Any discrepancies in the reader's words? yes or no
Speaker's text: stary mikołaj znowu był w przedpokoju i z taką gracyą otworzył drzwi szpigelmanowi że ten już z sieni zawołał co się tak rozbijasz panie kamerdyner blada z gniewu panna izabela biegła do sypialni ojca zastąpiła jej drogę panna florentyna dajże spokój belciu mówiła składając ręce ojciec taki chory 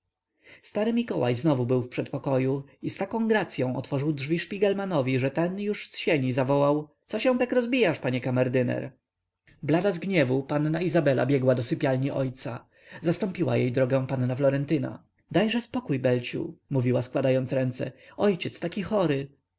no